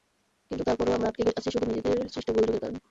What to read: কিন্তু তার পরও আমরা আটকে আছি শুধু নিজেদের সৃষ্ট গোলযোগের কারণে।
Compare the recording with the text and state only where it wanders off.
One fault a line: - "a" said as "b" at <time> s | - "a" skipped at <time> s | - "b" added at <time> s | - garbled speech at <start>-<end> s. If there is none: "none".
none